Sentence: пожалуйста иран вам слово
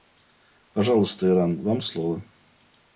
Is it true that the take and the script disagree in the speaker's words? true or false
false